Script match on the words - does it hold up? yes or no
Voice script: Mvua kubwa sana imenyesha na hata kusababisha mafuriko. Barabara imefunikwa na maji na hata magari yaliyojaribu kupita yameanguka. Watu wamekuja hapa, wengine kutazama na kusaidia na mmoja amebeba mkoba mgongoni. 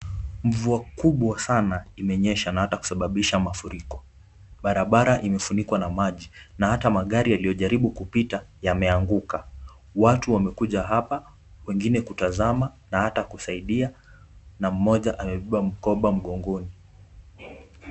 no